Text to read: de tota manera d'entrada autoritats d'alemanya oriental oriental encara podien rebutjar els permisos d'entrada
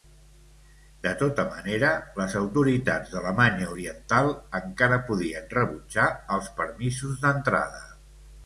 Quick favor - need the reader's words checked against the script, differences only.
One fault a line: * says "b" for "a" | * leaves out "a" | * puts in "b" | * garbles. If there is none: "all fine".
* says "les" for "d'entrada"
* leaves out "oriental"